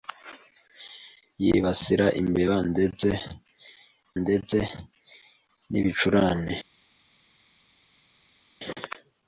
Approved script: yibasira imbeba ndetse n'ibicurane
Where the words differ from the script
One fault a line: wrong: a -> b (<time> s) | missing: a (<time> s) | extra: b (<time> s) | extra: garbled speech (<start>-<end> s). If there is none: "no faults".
extra: ndetse (4.2 s)